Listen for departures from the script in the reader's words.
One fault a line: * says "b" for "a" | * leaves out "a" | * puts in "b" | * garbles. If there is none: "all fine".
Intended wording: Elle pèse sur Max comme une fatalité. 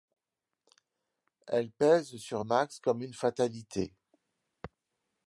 all fine